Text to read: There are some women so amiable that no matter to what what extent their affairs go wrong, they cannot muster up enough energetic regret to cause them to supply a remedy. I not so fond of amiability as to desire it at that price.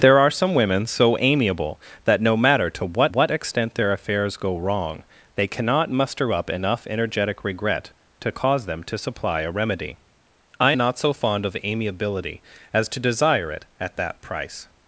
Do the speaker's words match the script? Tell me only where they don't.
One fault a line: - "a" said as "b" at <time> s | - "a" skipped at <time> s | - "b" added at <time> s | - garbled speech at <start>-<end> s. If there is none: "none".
none